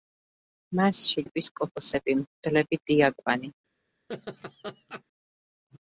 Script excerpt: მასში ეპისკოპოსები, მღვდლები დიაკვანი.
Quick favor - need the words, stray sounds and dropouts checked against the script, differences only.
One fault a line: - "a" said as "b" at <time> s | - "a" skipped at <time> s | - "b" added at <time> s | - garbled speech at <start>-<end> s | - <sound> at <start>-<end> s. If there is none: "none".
- laugh at 4.1-5.0 s